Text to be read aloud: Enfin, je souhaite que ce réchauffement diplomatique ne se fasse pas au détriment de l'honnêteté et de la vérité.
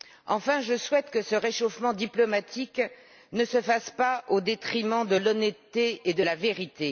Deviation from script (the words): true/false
false